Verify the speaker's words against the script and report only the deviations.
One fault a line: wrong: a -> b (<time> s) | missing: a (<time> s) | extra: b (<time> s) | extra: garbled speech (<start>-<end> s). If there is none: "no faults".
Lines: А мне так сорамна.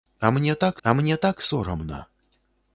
extra: а мне так (0.8 s)